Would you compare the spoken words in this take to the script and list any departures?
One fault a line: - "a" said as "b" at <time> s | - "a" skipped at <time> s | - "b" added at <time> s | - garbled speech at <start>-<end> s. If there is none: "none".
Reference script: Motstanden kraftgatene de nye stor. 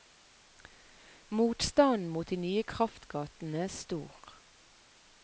- "kraftgatene" said as "mot" at 2.1 s
- "kraftgatene" added at 2.7 s